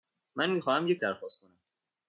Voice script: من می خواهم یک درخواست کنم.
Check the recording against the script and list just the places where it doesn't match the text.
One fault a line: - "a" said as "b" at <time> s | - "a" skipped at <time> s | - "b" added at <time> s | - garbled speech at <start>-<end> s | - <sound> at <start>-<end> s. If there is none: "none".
none